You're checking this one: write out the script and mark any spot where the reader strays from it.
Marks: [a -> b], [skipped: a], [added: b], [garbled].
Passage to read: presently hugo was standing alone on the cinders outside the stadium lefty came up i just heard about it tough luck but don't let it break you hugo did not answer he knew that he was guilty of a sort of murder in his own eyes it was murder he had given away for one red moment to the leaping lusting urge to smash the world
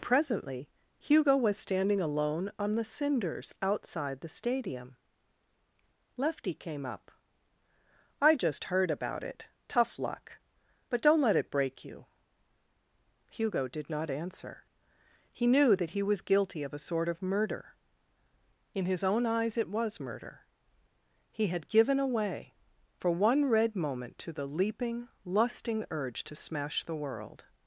presently hugo was standing alone on the cinders outside the stadium lefty came up i just heard about it tough luck but don't let it break you hugo did not answer he knew that he was guilty of a sort of murder in his own eyes it was murder he had given away for one red moment to the leaping lusting urge to smash the world